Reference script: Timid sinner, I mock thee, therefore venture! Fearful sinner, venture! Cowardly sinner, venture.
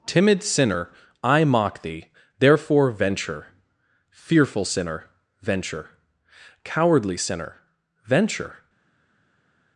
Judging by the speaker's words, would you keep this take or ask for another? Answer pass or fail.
pass